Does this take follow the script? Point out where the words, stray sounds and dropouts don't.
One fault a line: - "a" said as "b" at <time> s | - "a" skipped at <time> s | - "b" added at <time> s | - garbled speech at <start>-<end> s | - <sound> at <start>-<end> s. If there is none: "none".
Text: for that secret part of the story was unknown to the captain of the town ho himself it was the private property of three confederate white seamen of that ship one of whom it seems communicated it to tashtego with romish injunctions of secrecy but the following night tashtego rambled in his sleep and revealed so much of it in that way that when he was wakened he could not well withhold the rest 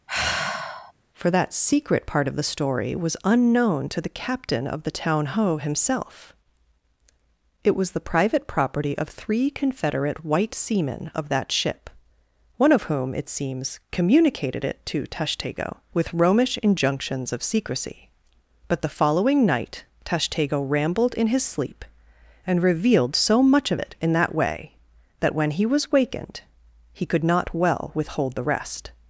- sigh at 0.1-0.9 s